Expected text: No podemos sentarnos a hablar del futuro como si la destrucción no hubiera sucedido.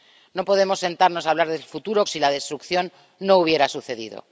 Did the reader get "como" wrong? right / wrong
wrong